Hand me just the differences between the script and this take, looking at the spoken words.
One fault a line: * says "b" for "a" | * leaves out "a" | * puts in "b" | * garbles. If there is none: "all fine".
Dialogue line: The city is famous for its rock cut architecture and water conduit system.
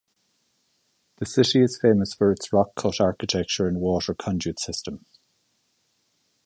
all fine